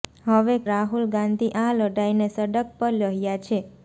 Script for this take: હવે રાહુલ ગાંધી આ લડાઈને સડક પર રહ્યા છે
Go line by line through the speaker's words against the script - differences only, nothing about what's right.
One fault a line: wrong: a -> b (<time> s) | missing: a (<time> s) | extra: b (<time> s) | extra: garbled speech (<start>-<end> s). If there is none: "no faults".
no faults